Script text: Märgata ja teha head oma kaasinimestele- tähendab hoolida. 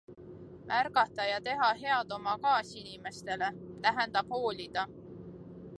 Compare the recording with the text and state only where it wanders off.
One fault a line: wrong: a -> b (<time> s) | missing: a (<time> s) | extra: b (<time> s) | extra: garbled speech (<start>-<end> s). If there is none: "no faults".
no faults